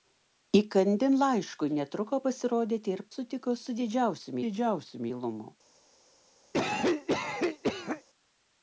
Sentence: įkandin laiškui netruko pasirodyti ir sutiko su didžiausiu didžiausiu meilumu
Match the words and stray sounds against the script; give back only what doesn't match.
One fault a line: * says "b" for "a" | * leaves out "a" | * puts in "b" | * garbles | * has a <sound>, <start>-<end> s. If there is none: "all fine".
* has a cough, 6.5-8.0 s